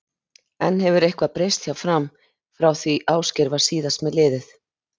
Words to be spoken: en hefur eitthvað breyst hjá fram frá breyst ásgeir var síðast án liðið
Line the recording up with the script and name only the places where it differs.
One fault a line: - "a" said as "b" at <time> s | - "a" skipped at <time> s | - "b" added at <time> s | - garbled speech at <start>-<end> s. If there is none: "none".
- "breyst" said as "því" at 2.8 s
- "án" said as "með" at 4.1 s